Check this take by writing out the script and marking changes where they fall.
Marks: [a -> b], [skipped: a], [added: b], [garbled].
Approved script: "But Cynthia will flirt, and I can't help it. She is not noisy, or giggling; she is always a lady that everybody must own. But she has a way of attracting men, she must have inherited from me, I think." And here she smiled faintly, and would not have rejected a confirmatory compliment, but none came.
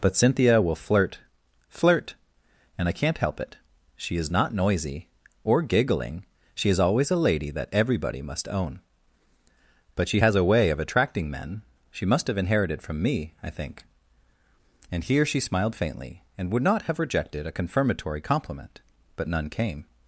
"But Cynthia will flirt, [added: flirt] and I can't help it. She is not noisy, or giggling; she is always a lady that everybody must own. But she has a way of attracting men, she must have inherited from me, I think." And here she smiled faintly, and would not have rejected a confirmatory compliment, but none came.